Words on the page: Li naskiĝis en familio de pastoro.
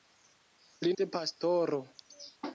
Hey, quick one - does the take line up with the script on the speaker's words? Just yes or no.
no